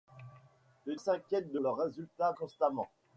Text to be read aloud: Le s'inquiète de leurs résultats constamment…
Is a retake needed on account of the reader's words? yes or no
no